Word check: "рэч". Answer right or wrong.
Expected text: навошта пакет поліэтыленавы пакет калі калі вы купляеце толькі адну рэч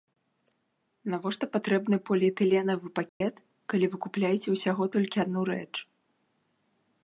right